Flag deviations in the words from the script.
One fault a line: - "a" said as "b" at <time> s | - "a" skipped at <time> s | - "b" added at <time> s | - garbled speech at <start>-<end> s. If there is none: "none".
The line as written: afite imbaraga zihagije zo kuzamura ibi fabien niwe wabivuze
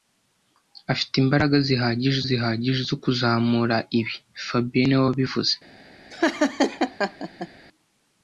- "zihagije" added at 2.3 s